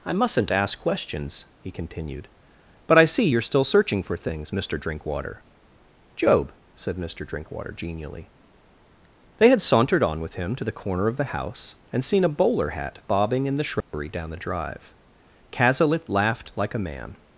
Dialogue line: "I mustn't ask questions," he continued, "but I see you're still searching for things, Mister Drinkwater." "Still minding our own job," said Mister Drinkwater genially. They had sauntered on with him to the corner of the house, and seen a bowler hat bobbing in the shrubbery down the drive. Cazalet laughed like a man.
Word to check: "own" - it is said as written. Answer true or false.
false